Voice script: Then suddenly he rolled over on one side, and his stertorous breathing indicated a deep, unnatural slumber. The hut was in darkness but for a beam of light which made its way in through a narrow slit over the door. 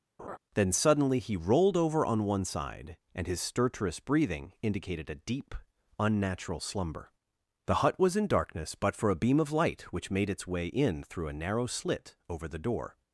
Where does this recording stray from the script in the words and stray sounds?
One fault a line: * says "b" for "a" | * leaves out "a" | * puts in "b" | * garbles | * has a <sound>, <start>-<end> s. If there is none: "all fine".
* has a laugh, 0.2-0.4 s